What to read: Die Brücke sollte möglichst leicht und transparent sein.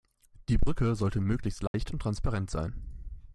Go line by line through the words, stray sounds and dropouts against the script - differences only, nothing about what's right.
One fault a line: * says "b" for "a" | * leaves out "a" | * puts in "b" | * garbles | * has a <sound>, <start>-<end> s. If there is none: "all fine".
* has a dropout, 1.7-1.7 s